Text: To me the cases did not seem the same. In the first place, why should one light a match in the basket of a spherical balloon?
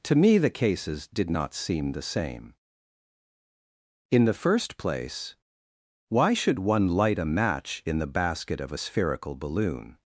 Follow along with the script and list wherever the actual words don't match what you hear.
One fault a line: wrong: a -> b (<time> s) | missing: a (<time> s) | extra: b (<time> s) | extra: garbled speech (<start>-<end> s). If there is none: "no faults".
no faults